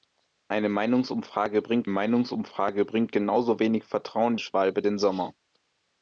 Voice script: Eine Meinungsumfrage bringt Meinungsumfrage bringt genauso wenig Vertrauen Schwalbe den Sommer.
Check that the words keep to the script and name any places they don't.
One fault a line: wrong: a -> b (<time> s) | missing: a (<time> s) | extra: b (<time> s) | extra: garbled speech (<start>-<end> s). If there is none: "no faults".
no faults